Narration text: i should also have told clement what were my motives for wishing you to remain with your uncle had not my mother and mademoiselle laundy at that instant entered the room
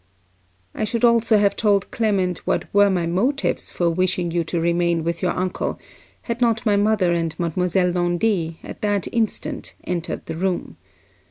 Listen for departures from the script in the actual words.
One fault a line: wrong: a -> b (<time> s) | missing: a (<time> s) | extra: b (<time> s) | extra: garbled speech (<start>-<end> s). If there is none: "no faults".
no faults